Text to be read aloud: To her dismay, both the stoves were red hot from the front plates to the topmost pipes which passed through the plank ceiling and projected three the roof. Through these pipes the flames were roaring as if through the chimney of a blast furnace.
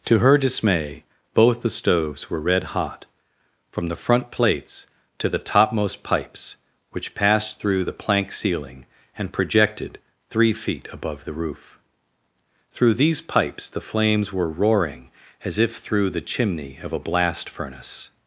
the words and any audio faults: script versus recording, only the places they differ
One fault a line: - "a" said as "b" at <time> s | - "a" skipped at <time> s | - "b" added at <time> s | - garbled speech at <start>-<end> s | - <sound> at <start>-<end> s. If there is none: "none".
- "feet above" added at 10.5 s